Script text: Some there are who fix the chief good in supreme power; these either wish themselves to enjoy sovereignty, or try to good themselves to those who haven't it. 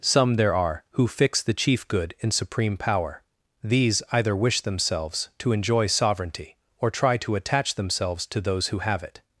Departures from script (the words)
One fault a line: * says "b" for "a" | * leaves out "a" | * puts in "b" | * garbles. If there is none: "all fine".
* says "attach" for "good"
* says "have" for "haven't"